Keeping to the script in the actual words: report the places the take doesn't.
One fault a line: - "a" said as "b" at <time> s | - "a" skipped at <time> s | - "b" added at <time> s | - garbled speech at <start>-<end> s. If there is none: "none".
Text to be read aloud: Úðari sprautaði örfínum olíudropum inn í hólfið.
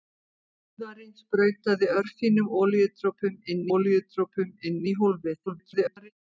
- "olíudropum inn" added at 3.8 s
- garbled speech at 5.5-6.1 s